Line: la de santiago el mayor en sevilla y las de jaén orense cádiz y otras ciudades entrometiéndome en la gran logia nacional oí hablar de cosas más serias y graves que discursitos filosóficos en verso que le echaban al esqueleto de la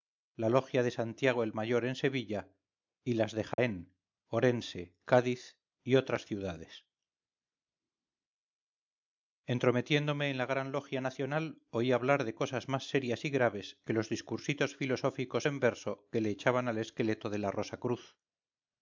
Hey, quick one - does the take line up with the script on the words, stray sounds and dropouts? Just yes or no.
no